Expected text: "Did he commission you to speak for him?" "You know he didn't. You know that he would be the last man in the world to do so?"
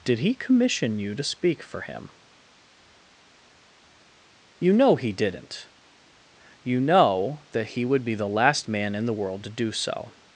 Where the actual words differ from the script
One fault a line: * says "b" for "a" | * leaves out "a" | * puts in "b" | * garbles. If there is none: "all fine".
all fine